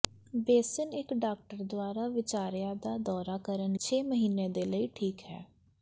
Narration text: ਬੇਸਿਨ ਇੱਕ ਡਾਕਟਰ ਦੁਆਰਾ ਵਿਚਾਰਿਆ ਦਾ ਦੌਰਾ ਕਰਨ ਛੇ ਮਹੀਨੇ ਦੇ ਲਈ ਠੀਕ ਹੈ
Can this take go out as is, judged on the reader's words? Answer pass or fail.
pass